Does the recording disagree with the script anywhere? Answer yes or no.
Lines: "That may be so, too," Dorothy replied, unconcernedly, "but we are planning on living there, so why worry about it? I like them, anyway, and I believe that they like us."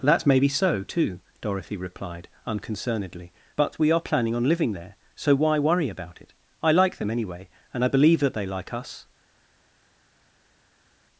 no